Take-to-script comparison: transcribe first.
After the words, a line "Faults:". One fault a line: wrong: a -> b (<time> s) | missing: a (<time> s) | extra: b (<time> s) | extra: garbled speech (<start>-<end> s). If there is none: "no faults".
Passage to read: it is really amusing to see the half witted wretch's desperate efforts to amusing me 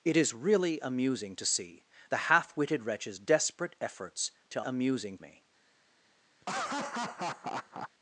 it is really amusing to see the half witted wretch's desperate efforts to amusing me
Faults:
no faults